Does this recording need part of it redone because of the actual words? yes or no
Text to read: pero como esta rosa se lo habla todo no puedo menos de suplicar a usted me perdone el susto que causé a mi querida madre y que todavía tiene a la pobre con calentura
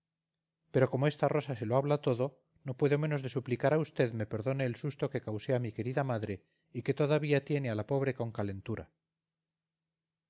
no